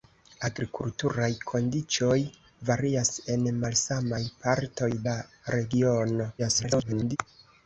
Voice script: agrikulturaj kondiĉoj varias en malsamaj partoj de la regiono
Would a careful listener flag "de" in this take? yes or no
yes